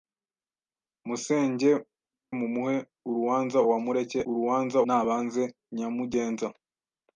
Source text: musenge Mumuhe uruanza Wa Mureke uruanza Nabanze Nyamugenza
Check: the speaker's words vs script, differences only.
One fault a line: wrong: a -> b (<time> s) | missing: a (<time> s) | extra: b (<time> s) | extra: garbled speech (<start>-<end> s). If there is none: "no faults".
no faults